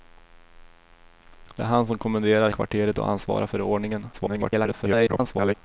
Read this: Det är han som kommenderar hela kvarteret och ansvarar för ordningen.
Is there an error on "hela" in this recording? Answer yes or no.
yes